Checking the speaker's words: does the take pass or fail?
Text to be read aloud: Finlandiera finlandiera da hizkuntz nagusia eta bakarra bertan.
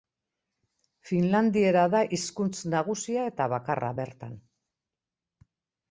fail